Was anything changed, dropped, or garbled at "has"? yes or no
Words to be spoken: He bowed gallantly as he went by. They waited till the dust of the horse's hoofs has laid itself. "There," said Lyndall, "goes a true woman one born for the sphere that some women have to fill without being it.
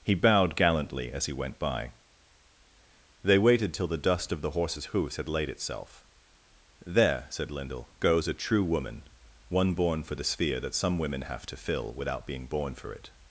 yes